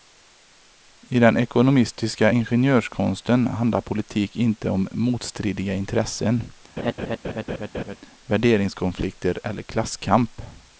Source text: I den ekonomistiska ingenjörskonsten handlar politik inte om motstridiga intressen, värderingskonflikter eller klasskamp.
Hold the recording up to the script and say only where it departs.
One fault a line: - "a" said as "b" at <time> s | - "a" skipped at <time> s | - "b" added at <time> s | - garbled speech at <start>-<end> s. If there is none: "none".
none